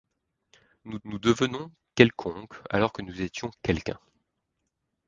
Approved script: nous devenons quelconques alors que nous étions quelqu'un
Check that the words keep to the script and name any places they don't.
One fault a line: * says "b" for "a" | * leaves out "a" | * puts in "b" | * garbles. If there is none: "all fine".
* puts in "nous"